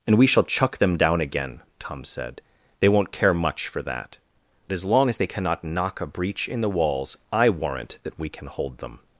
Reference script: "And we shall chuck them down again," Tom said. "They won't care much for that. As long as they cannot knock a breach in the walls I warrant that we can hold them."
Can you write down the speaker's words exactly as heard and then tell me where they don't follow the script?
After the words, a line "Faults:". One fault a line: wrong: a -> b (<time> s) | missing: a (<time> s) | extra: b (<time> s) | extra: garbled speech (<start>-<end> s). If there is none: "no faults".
"And we shall chuck them down again," Tom said. "They won't care much for that. As long as they cannot knock a breach in the walls I warrant that we can hold them."
Faults:
no faults